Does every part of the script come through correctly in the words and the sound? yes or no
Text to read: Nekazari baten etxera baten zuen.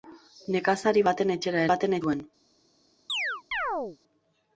no